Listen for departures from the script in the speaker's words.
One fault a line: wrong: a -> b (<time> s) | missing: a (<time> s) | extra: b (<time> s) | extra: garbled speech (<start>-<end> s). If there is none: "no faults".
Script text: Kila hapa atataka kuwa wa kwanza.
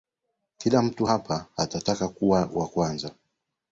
extra: mtu (0.8 s)